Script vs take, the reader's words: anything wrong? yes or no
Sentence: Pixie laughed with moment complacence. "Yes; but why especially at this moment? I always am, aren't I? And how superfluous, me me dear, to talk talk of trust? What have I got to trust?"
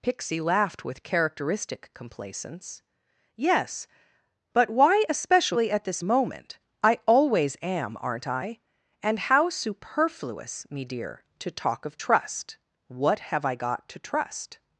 yes